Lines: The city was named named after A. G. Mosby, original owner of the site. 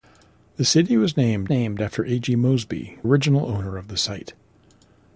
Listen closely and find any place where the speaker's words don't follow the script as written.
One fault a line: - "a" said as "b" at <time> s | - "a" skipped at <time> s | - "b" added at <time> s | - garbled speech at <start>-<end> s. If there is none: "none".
none